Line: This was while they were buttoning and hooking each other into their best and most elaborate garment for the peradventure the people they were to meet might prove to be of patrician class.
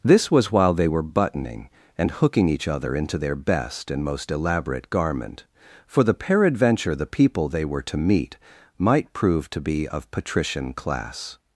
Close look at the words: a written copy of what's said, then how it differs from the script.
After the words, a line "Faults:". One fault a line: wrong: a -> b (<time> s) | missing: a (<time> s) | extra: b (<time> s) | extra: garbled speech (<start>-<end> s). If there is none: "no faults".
This was while they were buttoning and hooking each other into their best and most elaborate garment for the peradventure the people they were to meet might prove to be of patrician class.
Faults:
no faults